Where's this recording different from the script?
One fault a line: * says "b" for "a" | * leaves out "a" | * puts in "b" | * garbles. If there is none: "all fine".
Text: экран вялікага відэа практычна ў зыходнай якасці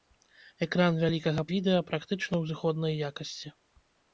all fine